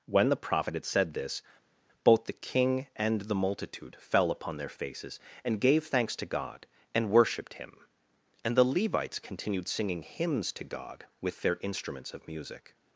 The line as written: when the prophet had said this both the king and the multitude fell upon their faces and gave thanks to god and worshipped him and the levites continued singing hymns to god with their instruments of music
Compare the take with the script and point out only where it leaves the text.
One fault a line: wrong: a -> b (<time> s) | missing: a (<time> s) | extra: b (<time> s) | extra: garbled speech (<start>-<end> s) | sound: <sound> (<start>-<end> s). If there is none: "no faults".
no faults